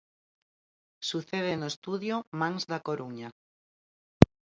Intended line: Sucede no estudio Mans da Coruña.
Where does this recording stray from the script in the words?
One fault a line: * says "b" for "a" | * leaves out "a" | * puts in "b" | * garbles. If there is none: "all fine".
all fine